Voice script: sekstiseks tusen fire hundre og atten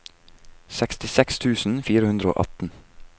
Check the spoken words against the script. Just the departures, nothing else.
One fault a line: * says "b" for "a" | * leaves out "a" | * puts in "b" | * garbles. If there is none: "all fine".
all fine